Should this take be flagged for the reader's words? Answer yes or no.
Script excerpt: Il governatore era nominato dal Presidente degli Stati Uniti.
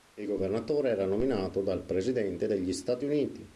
no